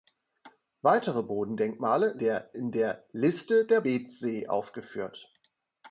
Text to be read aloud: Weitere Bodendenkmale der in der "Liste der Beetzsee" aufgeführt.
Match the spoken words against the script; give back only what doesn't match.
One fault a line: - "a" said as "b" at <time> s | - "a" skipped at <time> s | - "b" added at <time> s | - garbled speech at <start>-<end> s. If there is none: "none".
none